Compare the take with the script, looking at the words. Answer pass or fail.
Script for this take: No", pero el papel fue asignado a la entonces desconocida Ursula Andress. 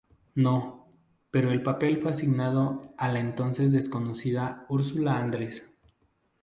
pass